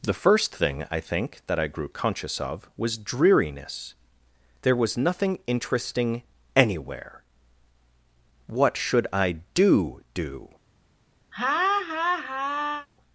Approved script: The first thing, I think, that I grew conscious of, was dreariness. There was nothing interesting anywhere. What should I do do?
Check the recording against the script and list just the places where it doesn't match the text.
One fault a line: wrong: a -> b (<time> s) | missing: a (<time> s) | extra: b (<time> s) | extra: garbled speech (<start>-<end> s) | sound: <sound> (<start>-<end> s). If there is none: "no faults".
sound: laugh (11.3-12.9 s)